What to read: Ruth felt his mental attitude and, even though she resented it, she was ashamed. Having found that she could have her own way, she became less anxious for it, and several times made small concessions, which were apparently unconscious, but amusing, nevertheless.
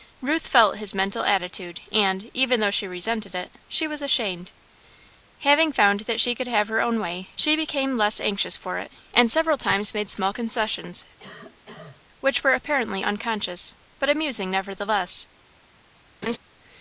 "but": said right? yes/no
yes